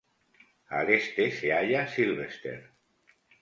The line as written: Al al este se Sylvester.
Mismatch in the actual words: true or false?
true